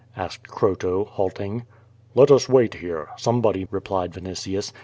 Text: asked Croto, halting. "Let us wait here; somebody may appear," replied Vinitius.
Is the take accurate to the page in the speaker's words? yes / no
no